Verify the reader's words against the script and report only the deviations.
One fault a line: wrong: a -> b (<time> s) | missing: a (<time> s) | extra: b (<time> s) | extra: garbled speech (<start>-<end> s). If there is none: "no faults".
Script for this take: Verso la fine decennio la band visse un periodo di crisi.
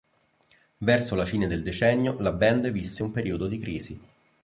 extra: del (1.4 s)